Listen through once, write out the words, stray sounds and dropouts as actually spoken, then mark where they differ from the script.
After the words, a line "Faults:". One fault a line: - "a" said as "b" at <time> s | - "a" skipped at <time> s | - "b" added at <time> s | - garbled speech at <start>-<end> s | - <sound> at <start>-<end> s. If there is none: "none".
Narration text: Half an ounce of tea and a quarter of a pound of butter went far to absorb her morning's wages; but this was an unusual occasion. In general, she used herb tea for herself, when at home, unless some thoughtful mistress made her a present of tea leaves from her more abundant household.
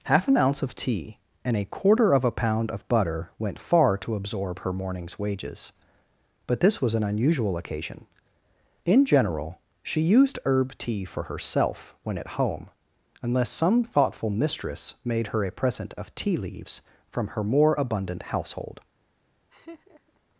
Half an ounce of tea and a quarter of a pound of butter went far to absorb her morning's wages; but this was an unusual occasion. In general, she used herb tea for herself, when at home, unless some thoughtful mistress made her a present of tea leaves from her more abundant household.
Faults:
- laugh at 19.5-20.2 s